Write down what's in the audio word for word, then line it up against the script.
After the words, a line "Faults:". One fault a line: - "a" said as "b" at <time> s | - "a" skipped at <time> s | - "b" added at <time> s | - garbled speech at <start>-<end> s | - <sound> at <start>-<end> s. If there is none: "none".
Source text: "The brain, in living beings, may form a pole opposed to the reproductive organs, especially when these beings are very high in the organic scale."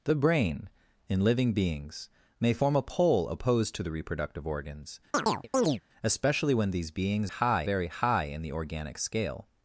"The brain, in living beings, may form a pole opposed to the reproductive organs, especially when these beings high very high in the organic scale."
Faults:
- chirp at 5.1-5.8 s
- "are" said as "high" at 7.3 s